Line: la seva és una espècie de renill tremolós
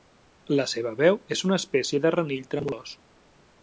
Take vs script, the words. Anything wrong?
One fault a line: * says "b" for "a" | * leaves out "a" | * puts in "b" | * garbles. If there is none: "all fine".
* puts in "veu"